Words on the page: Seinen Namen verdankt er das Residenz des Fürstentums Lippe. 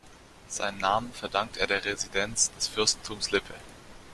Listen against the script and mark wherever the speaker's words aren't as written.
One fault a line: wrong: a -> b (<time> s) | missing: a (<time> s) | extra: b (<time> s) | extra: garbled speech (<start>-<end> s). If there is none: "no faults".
wrong: das -> der (1.6 s)